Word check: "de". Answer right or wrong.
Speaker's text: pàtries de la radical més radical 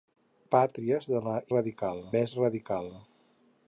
right